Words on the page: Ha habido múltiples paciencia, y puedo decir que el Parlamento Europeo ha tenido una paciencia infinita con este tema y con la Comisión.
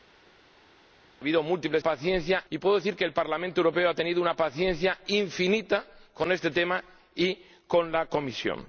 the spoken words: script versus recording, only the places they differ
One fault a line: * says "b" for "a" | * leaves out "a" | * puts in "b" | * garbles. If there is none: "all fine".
all fine